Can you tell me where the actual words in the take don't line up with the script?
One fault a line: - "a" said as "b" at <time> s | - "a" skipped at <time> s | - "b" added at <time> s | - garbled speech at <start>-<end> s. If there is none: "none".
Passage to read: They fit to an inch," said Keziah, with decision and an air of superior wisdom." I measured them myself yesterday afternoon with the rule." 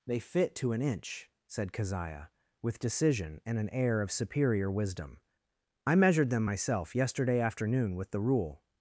none